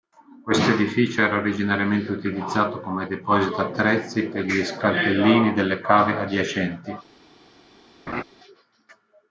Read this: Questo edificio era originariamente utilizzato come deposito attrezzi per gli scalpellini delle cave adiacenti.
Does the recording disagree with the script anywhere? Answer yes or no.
no